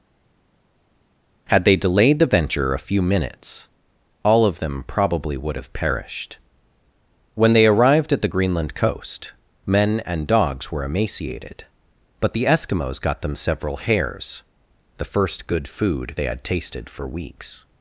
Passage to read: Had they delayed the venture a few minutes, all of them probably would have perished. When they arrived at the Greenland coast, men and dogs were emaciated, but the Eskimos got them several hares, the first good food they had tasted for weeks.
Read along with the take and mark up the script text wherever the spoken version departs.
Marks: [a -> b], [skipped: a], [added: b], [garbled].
Had they delayed the venture a few minutes, all of them probably would have perished. When they arrived at the Greenland coast, men and dogs were emaciated, but the Eskimos got them several hares, the first good food they had tasted for weeks.